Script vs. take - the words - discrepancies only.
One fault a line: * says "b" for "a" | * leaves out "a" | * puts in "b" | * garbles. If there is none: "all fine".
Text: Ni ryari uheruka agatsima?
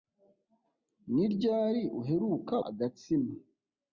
all fine